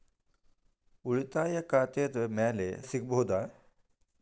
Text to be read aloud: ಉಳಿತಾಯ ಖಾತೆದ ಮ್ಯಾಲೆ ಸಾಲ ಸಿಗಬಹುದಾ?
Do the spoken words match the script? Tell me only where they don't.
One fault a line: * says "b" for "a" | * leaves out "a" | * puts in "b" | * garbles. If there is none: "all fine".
* leaves out "ಸಾಲ"